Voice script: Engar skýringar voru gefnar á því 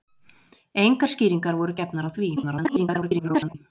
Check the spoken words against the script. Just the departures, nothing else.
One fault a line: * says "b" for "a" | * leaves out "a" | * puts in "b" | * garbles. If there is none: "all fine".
* garbles